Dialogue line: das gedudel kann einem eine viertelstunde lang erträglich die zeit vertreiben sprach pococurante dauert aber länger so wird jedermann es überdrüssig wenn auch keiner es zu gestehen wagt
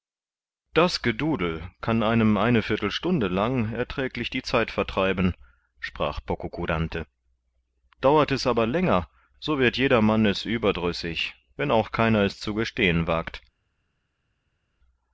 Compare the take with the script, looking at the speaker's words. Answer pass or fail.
fail